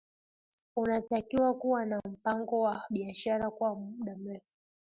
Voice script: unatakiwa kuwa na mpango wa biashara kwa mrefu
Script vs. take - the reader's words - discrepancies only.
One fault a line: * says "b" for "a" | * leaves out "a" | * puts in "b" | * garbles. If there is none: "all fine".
* puts in "muda"